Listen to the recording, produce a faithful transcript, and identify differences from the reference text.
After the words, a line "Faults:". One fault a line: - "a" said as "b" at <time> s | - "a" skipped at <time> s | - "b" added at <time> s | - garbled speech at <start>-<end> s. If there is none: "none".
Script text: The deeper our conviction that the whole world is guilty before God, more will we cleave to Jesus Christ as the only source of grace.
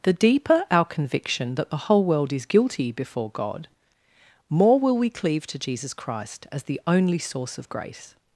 The deeper our conviction that the whole world is guilty before God, more will we cleave to Jesus Christ as the only source of grace.
Faults:
none